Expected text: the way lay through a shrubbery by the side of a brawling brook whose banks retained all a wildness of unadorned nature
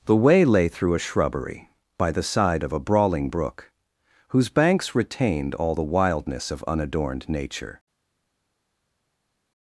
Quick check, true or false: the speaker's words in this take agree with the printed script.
false